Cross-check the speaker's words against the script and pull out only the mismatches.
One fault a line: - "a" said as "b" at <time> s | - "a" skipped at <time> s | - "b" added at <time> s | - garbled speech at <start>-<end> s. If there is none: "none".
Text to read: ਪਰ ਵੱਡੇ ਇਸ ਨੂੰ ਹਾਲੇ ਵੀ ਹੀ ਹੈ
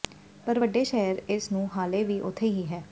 - "ਸ਼ਹਿਰ" added at 0.8 s
- "ਉੱਥੇ" added at 2.2 s